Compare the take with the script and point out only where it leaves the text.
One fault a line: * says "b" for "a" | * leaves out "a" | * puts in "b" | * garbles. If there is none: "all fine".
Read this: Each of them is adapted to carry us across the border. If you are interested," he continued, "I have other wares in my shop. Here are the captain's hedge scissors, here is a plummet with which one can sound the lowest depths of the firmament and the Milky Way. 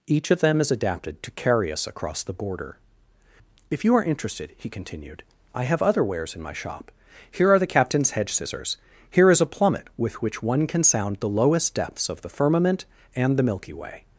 all fine